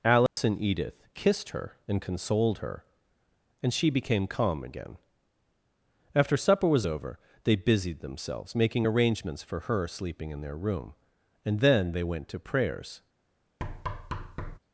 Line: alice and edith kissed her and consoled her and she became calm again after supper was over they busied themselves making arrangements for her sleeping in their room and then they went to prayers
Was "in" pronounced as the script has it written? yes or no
yes